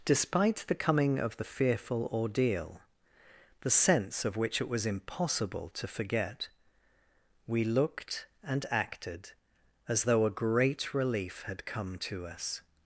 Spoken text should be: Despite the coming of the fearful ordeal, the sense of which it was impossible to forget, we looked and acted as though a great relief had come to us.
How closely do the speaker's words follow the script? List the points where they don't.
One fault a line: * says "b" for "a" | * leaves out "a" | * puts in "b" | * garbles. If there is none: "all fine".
all fine